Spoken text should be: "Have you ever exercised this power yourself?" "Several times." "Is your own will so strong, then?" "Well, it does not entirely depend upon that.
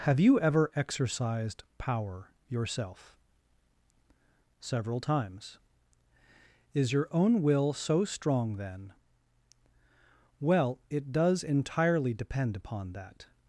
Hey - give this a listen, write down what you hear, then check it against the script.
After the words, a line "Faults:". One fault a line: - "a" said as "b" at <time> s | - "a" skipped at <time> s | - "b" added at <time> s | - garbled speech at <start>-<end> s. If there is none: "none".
"Have you ever exercised power yourself?" "Several times." "Is your own will so strong, then?" "Well, it does entirely depend upon that.
Faults:
- "this" skipped at 1.6 s
- "not" skipped at 11.4 s